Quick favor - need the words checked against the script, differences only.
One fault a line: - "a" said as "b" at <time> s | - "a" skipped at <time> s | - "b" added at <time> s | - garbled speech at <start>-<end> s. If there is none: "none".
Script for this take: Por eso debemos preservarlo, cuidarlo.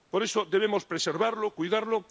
none